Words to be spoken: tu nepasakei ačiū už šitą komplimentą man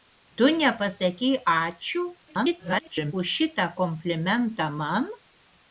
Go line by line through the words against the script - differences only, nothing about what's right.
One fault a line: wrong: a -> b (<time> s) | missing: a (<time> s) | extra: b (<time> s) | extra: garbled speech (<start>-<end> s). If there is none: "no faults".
extra: garbled speech (2.3-3.1 s)